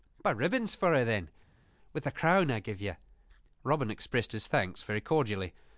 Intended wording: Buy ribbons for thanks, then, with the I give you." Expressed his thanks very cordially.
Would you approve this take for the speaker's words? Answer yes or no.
no